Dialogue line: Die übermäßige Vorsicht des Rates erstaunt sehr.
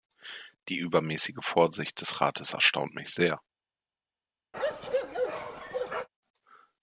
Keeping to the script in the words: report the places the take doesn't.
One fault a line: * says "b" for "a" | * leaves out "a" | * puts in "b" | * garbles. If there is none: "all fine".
* puts in "mich"